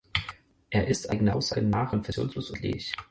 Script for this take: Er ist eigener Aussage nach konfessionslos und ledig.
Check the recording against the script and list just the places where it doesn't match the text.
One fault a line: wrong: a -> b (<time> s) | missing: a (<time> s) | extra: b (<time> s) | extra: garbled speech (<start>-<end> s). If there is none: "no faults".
no faults